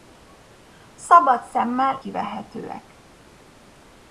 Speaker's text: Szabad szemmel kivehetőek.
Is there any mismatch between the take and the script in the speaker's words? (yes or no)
no